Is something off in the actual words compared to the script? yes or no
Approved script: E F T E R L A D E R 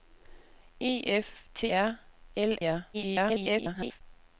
yes